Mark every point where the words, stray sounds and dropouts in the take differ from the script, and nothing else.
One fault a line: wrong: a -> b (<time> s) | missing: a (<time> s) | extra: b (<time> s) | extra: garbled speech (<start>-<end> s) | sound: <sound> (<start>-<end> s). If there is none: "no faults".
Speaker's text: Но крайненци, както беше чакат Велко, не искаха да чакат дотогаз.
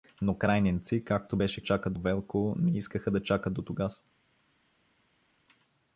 no faults